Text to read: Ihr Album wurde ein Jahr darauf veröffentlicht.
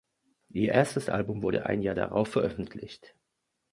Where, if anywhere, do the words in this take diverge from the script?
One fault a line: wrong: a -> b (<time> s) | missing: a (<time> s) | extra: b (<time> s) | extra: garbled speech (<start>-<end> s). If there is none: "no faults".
extra: erstes (0.7 s)